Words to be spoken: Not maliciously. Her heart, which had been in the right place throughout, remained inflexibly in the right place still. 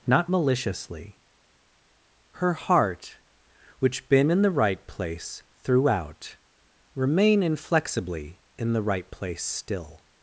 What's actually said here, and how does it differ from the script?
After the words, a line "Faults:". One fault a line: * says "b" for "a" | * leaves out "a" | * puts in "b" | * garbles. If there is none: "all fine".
Not maliciously. Her heart, which been in the right place throughout, remain inflexibly in the right place still.
Faults:
* leaves out "had"
* says "remain" for "remained"